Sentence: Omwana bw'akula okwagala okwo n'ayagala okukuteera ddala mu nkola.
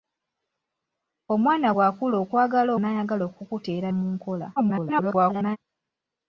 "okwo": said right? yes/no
no